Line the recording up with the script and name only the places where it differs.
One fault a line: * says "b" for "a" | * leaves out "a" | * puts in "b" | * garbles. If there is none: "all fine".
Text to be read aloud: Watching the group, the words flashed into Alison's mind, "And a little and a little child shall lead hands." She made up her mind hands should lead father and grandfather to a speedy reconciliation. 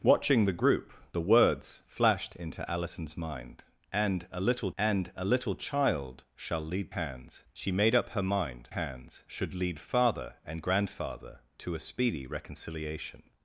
all fine